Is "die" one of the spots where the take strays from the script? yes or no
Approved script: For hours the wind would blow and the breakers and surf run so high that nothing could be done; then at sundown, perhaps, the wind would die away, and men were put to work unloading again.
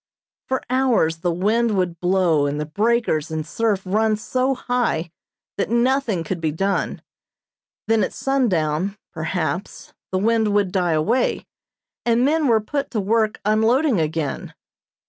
no